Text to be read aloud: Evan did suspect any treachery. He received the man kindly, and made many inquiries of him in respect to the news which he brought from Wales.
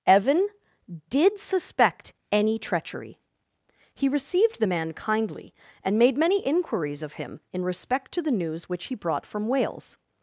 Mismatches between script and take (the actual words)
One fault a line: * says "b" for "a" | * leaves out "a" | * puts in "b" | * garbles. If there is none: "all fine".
all fine